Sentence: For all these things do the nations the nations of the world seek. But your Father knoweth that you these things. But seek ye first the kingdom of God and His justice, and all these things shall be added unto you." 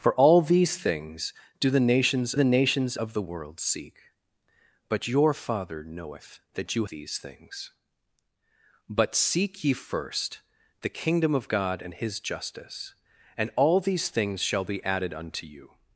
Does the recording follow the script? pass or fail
pass